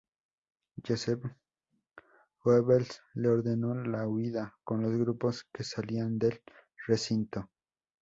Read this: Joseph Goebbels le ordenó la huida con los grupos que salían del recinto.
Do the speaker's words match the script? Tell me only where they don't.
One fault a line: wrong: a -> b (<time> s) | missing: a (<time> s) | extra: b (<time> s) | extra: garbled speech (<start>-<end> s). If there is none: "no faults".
no faults